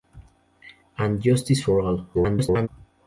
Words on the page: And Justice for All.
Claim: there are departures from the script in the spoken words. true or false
true